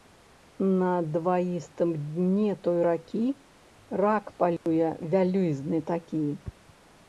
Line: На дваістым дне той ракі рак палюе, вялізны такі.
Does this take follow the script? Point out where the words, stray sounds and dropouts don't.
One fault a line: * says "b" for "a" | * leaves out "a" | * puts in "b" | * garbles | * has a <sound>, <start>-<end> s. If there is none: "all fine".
* has a dropout, 4.6-4.7 s